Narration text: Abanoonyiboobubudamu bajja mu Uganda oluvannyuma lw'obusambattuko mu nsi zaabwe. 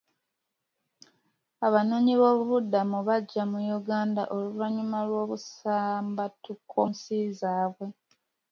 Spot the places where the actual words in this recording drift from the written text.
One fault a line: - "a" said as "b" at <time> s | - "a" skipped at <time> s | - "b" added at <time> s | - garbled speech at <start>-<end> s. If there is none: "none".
- "mu" skipped at 6.8 s